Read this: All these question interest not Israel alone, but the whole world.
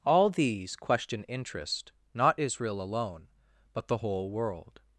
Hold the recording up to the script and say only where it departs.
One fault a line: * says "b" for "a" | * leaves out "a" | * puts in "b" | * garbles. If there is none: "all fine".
all fine